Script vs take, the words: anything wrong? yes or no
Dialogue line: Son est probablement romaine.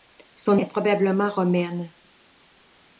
no